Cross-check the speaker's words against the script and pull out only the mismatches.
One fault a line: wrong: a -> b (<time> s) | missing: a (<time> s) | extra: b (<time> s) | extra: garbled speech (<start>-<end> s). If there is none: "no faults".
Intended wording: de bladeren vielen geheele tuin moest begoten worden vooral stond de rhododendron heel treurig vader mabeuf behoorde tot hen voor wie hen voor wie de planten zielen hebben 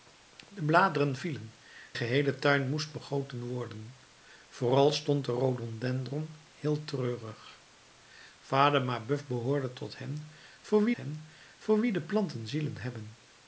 no faults